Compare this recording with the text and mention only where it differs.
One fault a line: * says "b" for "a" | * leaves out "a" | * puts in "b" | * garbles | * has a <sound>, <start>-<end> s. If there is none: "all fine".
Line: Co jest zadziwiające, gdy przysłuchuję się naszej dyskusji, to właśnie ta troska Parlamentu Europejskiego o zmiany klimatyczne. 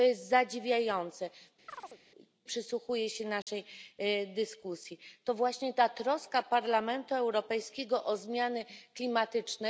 * leaves out "gdy"
* has a chirp, 1.7-2.0 s
* has a dropout, 3.4-3.5 s